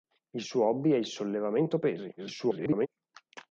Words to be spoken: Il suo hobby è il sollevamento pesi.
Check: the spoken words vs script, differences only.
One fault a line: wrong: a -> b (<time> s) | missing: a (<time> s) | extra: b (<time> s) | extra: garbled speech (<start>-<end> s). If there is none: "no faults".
extra: garbled speech (2.2-2.9 s)